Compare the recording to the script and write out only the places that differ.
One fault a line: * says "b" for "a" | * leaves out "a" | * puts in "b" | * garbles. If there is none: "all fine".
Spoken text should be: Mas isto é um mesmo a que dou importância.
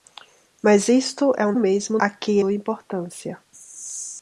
all fine